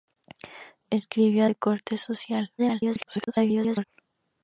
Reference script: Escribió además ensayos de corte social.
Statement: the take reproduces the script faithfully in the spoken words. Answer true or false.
false